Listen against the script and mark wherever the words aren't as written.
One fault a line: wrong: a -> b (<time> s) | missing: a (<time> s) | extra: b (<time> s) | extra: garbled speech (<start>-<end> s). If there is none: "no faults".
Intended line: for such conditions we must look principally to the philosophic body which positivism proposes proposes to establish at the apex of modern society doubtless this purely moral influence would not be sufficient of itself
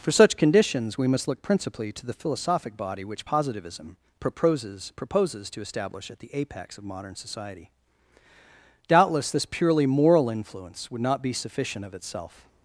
no faults